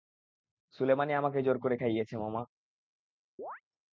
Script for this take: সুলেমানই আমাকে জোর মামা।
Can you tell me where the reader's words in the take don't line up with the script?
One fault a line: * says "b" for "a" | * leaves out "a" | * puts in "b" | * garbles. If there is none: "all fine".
* puts in "করে খাইয়েছে"